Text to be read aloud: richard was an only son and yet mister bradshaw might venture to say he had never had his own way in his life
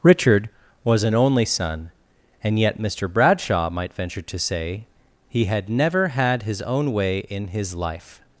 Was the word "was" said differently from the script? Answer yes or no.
no